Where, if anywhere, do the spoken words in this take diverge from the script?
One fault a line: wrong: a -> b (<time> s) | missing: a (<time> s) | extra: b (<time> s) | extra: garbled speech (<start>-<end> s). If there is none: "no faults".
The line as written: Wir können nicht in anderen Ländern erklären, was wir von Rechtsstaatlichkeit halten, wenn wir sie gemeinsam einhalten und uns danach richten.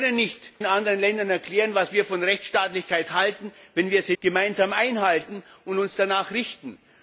no faults